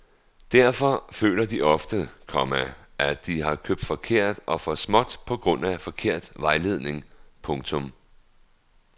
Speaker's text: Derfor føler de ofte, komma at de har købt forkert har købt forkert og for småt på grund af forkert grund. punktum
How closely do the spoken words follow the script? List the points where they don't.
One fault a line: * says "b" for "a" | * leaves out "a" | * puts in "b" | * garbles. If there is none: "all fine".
* leaves out "har købt forkert"
* says "vejledning" for "grund"